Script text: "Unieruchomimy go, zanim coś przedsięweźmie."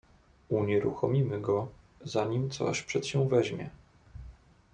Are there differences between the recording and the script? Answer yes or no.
no